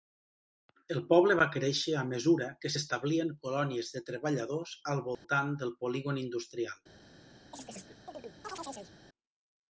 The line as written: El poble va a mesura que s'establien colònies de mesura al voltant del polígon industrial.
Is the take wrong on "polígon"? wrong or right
right